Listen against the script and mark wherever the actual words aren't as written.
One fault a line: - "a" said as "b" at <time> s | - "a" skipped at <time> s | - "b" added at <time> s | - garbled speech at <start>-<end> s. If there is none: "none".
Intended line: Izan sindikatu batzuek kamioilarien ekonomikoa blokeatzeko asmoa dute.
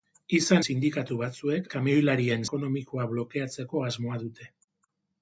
none